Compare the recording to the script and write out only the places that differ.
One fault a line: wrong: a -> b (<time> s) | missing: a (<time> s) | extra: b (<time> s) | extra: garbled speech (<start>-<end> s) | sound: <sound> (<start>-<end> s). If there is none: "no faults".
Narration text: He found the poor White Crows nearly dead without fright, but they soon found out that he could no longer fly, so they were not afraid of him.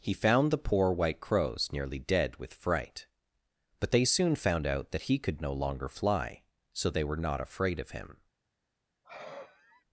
wrong: without -> with (2.4 s)
sound: sigh (9.0-9.8 s)